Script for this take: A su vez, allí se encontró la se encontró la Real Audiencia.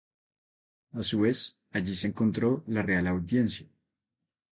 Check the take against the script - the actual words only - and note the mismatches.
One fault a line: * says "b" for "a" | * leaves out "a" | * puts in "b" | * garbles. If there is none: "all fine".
* leaves out "se encontró la"